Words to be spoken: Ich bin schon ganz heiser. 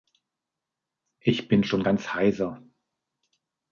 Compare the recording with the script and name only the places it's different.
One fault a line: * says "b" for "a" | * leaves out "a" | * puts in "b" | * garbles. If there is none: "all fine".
all fine